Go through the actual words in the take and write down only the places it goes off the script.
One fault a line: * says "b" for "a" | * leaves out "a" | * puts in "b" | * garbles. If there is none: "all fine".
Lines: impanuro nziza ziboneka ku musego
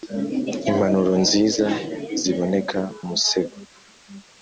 * leaves out "ku"